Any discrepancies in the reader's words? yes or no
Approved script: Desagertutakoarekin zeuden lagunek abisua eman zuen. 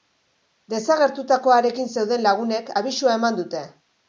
yes